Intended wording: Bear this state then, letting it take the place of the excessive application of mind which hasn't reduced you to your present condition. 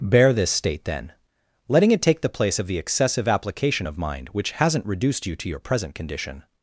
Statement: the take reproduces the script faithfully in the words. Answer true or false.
true